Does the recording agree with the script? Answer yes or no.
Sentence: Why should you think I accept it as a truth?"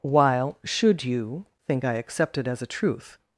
no